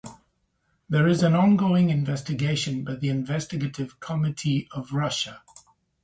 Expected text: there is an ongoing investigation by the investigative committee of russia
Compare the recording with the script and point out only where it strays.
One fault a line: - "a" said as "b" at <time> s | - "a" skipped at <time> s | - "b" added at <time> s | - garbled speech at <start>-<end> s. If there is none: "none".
none